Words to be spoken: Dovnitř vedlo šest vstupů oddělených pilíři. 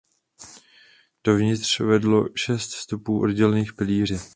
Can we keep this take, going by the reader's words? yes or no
yes